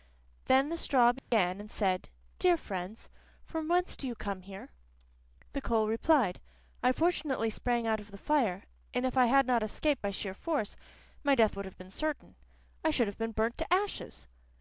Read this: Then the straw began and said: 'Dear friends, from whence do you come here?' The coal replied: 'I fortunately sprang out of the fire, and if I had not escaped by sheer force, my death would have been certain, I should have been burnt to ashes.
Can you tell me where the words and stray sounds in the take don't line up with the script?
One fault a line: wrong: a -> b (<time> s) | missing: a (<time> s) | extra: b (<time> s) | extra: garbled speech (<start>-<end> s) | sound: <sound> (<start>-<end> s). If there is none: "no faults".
sound: dropout (1.2-1.3 s)